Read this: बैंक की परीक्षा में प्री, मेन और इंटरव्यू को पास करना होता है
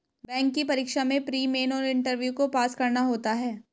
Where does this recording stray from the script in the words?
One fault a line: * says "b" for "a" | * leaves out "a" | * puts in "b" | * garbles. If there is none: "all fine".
all fine